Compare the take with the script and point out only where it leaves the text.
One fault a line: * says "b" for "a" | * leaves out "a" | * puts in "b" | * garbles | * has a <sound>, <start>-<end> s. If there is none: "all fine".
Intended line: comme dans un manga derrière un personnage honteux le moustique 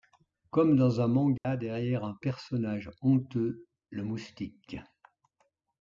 * has a dropout, 1.4-1.4 s